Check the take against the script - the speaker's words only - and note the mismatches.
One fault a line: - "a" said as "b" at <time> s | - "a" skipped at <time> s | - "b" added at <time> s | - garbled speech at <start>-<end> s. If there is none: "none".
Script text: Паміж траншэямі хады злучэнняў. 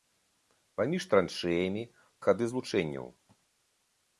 none